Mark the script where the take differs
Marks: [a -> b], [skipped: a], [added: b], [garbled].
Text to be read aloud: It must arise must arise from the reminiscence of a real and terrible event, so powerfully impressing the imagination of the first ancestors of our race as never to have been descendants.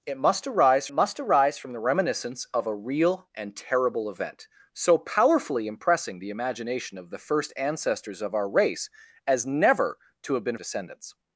It must arise must arise from the reminiscence of a real and terrible event, so powerfully impressing the imagination of the first ancestors of our race as never to have been descendants.